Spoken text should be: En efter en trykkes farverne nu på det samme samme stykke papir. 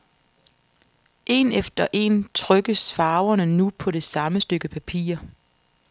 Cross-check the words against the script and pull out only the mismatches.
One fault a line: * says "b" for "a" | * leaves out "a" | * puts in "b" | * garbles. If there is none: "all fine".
* leaves out "samme"